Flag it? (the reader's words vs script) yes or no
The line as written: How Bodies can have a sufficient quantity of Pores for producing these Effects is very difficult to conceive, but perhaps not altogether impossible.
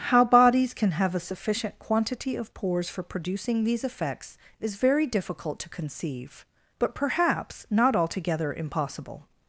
no